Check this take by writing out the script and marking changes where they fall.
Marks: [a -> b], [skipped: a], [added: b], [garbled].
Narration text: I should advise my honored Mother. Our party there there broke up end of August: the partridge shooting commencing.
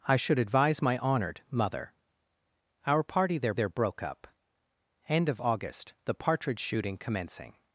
I should advise my honored Mother. Our party there there broke up end of August: the partridge shooting commencing.